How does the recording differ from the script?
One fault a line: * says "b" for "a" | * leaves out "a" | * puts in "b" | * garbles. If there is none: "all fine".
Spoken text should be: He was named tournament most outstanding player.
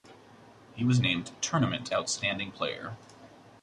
* leaves out "most"